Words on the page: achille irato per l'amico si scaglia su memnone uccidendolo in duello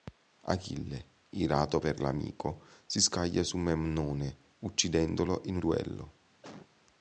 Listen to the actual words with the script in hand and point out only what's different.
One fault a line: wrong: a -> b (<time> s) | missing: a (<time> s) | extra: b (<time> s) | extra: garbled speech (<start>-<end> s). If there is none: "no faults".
no faults